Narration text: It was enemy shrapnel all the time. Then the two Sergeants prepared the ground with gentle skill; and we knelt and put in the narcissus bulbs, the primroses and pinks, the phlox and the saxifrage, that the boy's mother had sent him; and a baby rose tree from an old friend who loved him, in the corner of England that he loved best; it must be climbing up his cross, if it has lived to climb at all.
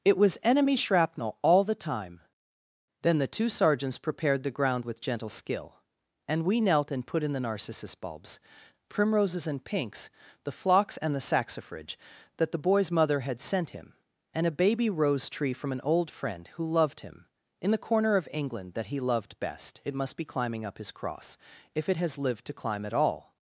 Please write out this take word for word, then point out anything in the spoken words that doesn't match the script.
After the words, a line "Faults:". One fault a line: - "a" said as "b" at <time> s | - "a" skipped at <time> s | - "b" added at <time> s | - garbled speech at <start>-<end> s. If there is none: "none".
It was enemy shrapnel all the time. Then the two Sergeants prepared the ground with gentle skill; and we knelt and put in the narcissus bulbs, primroses and pinks, the phlox and the saxifrage, that the boy's mother had sent him; and a baby rose tree from an old friend who loved him, in the corner of England that he loved best; it must be climbing up his cross, if it has lived to climb at all.
Faults:
- "the" skipped at 8.4 s